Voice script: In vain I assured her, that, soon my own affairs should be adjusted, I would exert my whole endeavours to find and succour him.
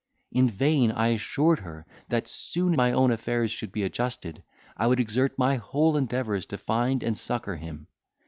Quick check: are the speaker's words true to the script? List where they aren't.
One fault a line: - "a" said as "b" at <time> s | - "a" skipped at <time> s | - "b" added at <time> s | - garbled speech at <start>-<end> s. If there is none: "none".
none